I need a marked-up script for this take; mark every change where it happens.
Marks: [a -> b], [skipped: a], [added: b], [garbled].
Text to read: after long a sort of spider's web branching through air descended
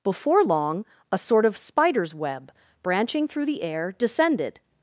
[after -> before] long a sort of spider's web branching through [added: the] air descended